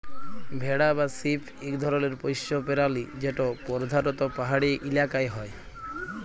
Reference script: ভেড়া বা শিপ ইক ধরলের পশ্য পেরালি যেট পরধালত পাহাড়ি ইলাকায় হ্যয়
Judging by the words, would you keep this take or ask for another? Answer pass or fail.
pass